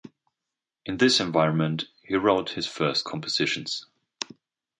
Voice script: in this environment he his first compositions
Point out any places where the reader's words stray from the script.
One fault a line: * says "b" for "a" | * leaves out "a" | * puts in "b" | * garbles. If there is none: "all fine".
* puts in "wrote"